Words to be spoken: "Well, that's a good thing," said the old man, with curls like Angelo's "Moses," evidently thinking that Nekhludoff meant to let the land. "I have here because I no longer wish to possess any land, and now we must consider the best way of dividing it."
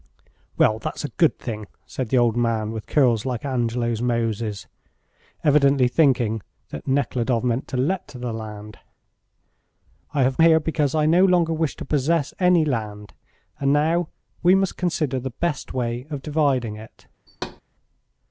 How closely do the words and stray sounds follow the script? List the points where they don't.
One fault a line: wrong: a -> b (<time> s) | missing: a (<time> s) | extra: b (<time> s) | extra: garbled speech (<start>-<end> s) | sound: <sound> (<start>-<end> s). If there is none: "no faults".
sound: thud (17.3-17.6 s)